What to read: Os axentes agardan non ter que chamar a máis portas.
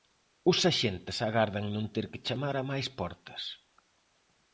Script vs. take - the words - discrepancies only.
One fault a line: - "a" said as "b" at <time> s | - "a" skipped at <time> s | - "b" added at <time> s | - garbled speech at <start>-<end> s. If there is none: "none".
none